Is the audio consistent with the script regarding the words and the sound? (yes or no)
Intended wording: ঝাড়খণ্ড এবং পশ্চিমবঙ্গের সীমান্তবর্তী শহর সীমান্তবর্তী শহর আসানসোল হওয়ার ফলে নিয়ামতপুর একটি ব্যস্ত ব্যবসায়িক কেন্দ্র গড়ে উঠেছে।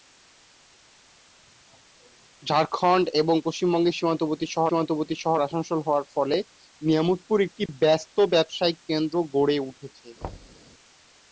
no